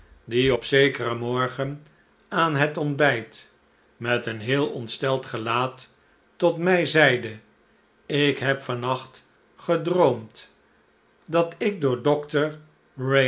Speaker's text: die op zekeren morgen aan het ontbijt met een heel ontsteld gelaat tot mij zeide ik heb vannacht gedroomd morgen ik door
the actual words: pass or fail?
fail